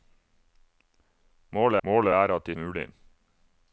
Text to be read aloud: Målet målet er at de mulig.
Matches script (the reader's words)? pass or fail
pass